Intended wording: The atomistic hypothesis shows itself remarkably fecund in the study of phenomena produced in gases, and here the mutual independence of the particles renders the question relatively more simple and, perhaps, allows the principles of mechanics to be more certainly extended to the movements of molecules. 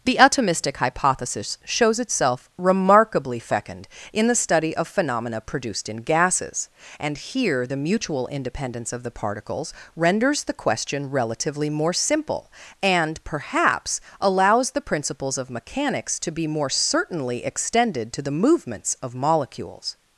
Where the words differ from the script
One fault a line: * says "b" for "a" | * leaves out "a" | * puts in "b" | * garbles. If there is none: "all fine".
all fine